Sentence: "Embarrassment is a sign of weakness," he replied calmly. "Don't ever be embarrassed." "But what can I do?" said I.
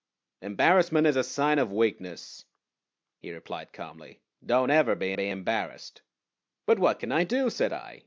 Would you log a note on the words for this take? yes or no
yes